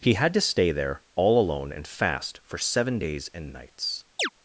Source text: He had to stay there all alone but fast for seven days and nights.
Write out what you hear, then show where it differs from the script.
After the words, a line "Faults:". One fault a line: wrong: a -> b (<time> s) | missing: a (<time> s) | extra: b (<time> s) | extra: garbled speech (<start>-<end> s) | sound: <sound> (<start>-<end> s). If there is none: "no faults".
He had to stay there all alone and fast for seven days and nights.
Faults:
wrong: but -> and (1.7 s)
sound: chirp (4.2-4.3 s)